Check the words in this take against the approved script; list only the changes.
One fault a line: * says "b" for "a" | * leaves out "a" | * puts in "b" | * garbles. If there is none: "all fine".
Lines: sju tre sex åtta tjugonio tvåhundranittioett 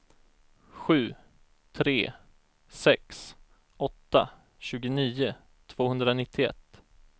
all fine